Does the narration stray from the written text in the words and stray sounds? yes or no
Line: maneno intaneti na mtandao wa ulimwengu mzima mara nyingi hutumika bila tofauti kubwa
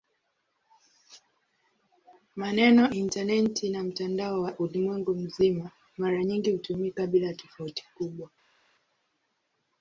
no